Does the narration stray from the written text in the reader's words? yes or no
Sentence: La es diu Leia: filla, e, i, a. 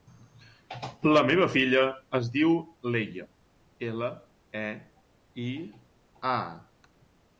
yes